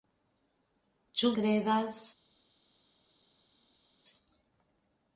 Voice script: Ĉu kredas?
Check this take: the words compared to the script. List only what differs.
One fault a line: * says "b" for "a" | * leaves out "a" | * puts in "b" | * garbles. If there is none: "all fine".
all fine